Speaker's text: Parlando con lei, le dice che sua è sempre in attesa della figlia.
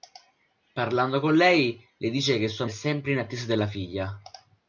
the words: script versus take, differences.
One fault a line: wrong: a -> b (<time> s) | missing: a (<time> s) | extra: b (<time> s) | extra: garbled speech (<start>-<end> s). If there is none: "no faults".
no faults